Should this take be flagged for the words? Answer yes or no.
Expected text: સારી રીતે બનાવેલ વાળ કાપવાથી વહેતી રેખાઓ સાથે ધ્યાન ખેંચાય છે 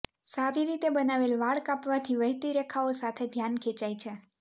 no